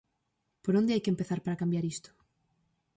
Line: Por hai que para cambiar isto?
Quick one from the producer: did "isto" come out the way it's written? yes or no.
yes